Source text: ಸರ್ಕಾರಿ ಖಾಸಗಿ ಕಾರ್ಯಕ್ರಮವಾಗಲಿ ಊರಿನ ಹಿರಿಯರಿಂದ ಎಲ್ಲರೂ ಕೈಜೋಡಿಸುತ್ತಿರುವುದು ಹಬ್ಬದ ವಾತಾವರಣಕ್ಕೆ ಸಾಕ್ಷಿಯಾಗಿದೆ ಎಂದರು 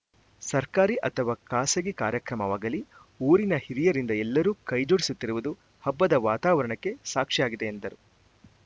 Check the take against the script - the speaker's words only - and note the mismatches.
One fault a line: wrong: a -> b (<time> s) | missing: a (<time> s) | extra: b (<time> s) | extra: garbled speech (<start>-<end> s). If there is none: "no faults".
extra: ಅಥವಾ (1.1 s)